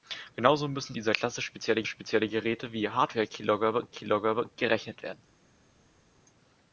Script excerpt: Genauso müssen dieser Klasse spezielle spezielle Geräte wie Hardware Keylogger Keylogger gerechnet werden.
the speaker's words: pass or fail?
pass